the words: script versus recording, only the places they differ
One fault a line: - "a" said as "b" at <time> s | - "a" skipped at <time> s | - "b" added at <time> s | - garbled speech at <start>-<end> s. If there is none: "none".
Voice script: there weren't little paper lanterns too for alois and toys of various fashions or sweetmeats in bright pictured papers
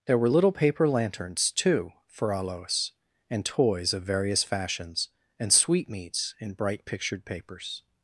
- "weren't" said as "were" at 0.2 s
- "or" said as "and" at 5.4 s